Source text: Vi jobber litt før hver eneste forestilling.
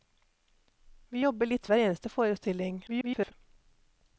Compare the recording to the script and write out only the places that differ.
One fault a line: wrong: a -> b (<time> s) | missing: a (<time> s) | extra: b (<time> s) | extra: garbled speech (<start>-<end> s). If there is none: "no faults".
missing: før (1.7 s)
extra: garbled speech (2.9-3.3 s)